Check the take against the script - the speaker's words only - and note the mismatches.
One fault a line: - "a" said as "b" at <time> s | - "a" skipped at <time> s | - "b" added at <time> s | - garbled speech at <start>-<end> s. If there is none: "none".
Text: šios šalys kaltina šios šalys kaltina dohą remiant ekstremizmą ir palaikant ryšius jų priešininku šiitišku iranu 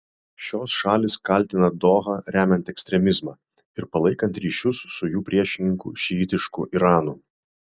- "šios šalys kaltina" skipped at 1.7 s
- "su" added at 5.0 s